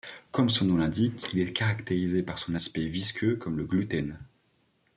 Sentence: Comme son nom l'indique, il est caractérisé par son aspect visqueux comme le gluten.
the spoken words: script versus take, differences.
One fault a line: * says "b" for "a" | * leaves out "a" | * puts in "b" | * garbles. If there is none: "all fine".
all fine